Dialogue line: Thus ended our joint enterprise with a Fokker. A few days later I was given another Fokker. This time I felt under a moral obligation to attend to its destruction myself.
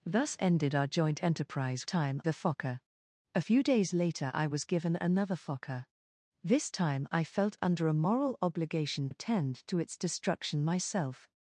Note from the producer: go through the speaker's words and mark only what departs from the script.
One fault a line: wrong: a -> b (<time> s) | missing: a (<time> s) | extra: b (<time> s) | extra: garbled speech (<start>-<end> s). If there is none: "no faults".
wrong: with -> time (1.8 s)
missing: to (9.1 s)